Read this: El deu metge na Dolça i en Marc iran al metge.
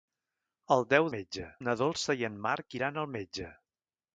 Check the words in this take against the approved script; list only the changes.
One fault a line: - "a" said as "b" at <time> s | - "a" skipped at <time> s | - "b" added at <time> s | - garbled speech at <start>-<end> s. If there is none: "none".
none